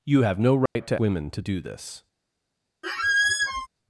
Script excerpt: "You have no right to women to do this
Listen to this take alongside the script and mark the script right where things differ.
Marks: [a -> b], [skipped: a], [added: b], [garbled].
"You have no right to women to do this